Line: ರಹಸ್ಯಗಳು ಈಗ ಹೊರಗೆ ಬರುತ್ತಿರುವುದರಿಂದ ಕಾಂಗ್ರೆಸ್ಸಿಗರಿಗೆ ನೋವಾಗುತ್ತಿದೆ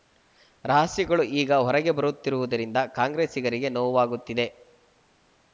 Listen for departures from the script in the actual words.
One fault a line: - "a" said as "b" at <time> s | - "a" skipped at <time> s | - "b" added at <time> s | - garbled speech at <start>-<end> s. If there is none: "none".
none